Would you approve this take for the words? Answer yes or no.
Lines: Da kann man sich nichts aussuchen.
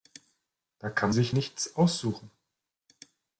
no